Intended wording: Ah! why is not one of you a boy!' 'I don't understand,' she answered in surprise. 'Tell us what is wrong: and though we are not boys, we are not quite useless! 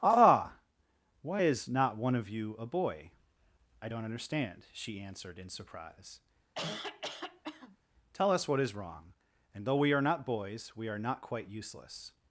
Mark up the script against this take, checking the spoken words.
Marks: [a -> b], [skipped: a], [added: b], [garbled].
Ah! why is not one of you a boy!' 'I don't understand,' she answered in surprise. 'Tell us what is wrong: and though we are not boys, we are not quite useless!